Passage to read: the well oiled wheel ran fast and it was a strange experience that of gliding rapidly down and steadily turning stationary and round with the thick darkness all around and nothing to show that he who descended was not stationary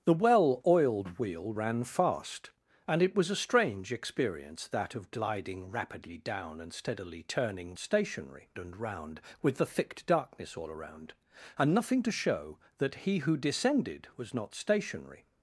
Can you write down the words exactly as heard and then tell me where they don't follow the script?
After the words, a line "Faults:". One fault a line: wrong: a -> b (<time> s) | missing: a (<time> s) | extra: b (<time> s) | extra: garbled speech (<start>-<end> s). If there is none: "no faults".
the well oiled wheel ran fast and it was a strange experience that of gliding rapidly down and steadily turning stationary and round with the thick darkness all around and nothing to show that he who descended was not stationary
Faults:
no faults